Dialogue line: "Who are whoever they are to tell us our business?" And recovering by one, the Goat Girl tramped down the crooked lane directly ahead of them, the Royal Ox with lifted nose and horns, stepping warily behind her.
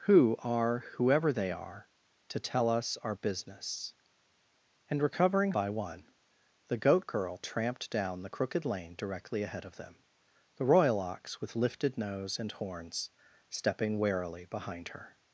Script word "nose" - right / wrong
right